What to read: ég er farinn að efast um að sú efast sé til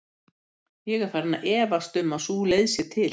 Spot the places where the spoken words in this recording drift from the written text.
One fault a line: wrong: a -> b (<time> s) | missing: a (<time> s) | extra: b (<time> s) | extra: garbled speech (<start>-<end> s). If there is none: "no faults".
wrong: efast -> leið (2.5 s)